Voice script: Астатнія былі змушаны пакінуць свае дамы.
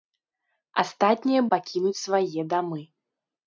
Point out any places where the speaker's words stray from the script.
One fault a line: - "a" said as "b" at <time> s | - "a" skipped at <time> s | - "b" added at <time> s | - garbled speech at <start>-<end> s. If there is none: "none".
- "былі змушаны" skipped at 1.4 s